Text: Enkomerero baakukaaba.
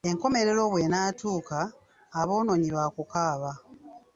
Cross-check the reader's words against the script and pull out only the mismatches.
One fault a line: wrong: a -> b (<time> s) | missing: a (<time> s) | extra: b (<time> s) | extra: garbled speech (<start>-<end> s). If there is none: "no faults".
extra: bw'enaatuuka aboonoonyi (0.7 s)